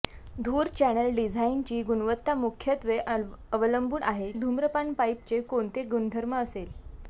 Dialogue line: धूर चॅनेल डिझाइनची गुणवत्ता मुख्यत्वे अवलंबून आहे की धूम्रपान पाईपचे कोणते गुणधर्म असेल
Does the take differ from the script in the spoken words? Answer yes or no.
yes